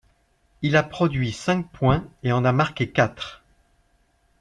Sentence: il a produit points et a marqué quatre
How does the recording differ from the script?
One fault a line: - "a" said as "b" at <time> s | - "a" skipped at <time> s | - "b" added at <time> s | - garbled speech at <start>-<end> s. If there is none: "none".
- "cinq" added at 1.3 s
- "en" added at 2.3 s